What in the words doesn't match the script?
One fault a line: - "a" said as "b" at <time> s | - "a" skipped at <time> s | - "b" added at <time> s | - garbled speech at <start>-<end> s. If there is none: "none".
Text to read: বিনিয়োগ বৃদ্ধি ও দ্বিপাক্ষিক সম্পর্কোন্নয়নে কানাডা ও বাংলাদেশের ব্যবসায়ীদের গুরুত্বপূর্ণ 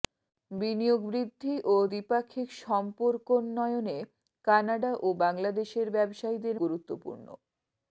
none